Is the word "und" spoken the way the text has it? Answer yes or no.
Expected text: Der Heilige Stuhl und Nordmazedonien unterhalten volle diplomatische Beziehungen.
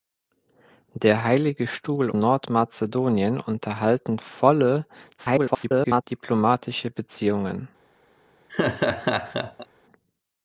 no